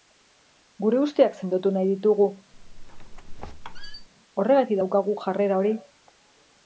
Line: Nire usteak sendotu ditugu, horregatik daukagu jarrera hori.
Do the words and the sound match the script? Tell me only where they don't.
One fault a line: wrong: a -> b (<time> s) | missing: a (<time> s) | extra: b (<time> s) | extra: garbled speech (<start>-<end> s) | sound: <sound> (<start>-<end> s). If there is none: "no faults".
wrong: Nire -> Gure (0.8 s)
extra: nahi (1.8 s)
sound: squeak (2.5-4.1 s)